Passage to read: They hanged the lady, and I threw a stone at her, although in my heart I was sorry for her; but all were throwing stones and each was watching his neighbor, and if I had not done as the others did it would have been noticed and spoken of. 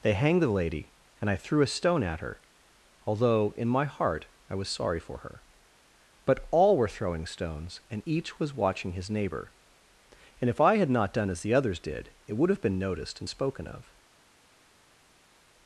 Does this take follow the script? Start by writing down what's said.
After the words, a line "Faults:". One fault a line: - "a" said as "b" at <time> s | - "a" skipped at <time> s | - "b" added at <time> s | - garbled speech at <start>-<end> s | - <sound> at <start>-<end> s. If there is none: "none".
They hanged the lady, and I threw a stone at her, although in my heart I was sorry for her; but all were throwing stones and each was watching his neighbor, and if I had not done as the others did it would have been noticed and spoken of.
Faults:
none